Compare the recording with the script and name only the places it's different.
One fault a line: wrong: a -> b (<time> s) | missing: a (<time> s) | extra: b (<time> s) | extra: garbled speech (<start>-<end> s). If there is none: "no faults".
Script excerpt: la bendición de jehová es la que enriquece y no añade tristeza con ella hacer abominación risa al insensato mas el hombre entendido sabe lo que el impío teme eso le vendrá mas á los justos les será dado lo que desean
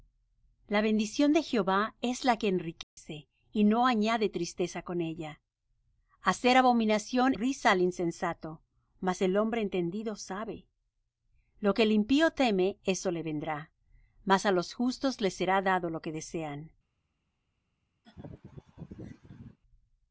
no faults